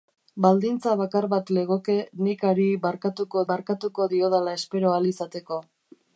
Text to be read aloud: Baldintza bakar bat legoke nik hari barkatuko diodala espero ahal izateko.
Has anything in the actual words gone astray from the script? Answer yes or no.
yes